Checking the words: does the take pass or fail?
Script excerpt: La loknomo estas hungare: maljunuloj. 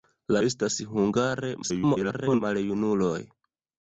fail